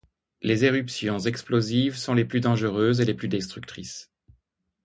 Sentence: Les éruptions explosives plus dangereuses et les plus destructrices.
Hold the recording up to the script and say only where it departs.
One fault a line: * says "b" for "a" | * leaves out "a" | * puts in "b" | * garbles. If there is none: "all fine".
* puts in "sont les"